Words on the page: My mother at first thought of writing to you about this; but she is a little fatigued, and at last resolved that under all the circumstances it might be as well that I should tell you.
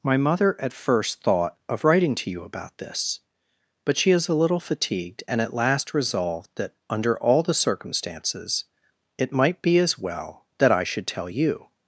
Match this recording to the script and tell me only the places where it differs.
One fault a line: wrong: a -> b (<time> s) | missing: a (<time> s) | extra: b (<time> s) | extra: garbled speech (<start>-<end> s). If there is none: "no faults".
no faults